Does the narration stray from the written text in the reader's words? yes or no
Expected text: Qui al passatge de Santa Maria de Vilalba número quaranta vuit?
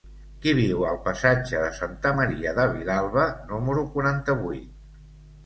yes